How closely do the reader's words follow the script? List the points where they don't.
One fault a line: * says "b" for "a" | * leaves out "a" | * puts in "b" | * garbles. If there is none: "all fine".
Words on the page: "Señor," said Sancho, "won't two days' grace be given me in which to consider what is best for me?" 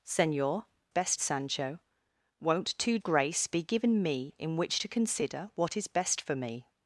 * says "best" for "said"
* leaves out "days"